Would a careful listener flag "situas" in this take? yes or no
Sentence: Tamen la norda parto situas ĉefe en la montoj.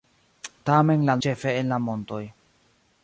yes